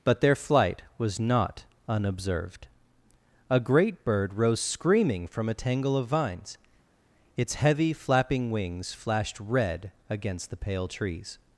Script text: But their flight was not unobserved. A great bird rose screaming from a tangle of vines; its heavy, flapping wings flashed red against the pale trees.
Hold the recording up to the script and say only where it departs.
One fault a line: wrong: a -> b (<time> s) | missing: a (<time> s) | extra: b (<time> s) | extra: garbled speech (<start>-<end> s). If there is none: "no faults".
no faults